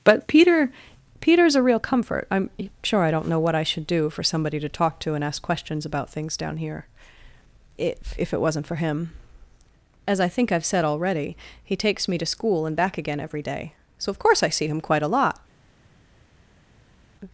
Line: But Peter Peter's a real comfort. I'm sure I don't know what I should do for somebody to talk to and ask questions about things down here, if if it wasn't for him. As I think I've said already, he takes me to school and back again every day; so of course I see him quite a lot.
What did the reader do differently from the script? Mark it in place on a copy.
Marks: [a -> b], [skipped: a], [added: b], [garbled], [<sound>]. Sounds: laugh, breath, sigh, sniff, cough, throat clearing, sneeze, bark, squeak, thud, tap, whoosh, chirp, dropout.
But Peter Peter's a real comfort. I'm sure I don't know what I should do for somebody to talk to and ask questions about things down here, if if it wasn't for him. As I think I've said already, he takes me to school and back again every day; so of course I see him quite a lot.